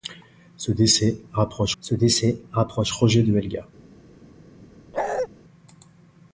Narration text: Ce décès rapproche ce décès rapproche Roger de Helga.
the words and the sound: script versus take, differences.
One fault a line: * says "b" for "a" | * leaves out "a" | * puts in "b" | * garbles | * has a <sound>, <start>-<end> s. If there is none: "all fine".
* has a bark, 4.9-5.3 s